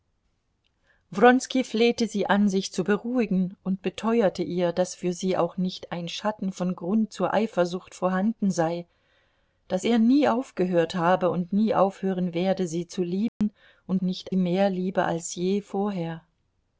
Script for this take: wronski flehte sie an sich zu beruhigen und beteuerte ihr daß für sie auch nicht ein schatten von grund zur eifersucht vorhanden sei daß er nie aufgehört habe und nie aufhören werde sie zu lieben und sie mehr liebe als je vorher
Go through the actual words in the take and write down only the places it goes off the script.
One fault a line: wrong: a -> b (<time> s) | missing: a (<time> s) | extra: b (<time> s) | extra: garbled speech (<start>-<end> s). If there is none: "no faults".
wrong: sie -> nicht (14.0 s)